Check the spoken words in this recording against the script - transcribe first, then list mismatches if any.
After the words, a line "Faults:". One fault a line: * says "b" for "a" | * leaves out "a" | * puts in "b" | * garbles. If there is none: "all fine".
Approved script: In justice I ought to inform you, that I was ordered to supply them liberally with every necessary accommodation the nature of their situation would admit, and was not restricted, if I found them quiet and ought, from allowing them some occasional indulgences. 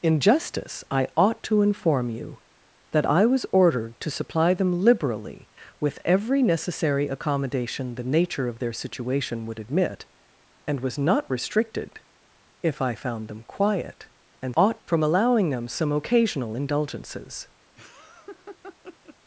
In justice I ought to inform you, that I was ordered to supply them liberally with every necessary accommodation the nature of their situation would admit, and was not restricted, if I found them quiet and ought, from allowing them some occasional indulgences.
Faults:
all fine